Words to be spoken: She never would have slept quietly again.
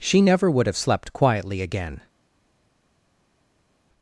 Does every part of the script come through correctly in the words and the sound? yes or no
yes